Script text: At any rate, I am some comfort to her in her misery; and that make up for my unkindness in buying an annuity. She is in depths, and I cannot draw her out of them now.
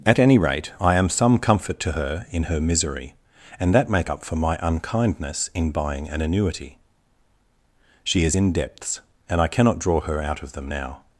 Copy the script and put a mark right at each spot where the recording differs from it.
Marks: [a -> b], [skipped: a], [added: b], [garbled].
At any rate, I am some comfort to her in her misery; and that make up for my unkindness in buying an annuity. She is in depths, and I cannot draw her out of them now.